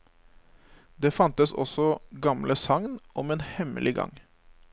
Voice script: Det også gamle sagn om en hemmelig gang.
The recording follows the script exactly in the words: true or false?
false